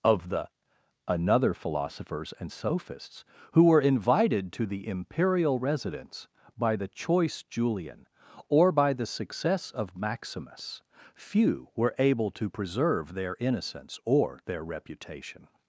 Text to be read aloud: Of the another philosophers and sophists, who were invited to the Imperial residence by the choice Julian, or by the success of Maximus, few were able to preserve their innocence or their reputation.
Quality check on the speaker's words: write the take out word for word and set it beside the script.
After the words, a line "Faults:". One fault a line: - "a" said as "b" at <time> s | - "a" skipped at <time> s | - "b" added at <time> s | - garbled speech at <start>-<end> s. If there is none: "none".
Of the another philosophers and sophists, who were invited to the Imperial residence by the choice Julian, or by the success of Maximus, few were able to preserve their innocence or their reputation.
Faults:
none